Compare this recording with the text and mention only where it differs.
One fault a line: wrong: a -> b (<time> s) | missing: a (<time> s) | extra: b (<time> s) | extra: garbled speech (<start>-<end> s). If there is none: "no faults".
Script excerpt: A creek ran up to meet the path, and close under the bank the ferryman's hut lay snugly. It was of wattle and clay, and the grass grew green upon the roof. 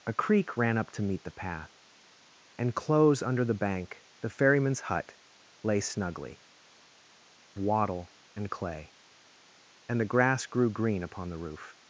missing: It was of (6.4 s)